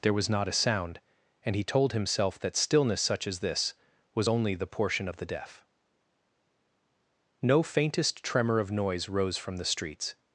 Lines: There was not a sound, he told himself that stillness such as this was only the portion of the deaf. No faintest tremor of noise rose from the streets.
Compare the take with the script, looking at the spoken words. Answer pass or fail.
fail